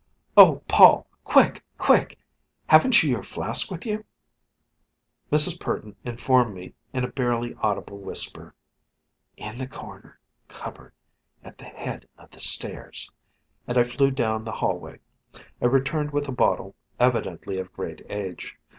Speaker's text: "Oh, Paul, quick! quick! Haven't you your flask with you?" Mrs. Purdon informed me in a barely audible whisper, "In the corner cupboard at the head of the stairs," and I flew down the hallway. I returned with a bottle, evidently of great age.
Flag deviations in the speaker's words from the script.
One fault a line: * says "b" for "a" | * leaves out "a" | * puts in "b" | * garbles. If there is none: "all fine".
all fine